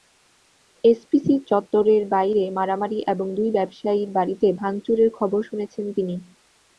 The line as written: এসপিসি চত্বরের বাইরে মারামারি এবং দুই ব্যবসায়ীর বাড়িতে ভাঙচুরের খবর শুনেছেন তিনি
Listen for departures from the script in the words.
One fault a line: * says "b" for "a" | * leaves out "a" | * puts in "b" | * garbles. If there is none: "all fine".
all fine